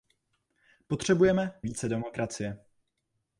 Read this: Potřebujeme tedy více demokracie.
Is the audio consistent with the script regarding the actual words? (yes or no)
no